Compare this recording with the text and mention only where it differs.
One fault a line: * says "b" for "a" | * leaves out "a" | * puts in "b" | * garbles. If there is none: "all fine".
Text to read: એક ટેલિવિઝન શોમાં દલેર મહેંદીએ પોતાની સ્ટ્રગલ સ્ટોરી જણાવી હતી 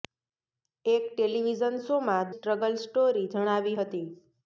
* leaves out "દલેર મહેંદીએ પોતાની"